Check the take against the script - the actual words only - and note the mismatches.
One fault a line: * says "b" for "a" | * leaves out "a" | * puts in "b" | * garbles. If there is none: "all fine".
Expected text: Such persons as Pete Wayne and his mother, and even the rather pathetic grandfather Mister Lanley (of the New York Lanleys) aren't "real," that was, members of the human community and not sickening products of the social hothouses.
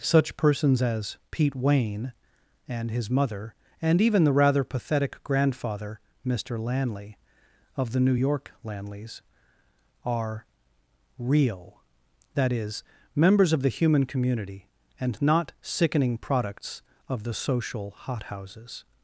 * says "are" for "aren't"
* says "is" for "was"